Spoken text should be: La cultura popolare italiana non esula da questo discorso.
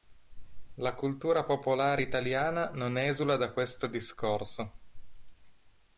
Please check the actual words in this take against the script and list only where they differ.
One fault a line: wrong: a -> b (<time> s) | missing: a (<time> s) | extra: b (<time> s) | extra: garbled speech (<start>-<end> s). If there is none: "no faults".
no faults